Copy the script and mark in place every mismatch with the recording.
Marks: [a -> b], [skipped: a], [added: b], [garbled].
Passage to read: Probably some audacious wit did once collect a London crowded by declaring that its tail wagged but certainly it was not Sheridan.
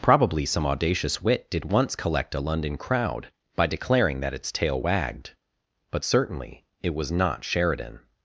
Probably some audacious wit did once collect a London [crowded -> crowd] by declaring that its tail wagged but certainly it was not Sheridan.